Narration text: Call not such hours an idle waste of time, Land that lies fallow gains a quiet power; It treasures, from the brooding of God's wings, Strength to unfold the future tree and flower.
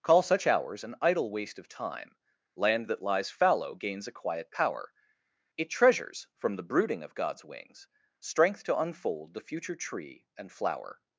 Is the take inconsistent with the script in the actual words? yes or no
yes